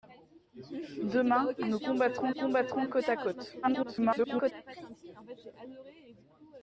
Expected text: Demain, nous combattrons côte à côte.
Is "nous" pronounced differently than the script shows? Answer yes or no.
no